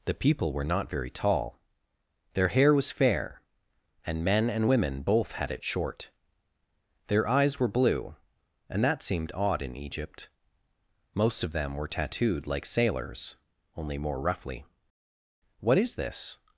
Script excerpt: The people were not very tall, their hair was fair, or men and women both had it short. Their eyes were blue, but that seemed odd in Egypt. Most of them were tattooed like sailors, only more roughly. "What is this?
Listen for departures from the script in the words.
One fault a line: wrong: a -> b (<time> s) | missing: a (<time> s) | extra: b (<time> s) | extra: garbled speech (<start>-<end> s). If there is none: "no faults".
wrong: or -> and (4.0 s)
wrong: but -> and (8.7 s)